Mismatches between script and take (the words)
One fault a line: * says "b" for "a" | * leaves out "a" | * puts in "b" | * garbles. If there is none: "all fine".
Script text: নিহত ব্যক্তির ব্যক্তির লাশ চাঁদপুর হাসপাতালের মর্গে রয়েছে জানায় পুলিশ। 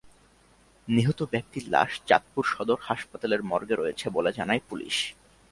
* leaves out "ব্যক্তির"
* puts in "সদর"
* puts in "বলে"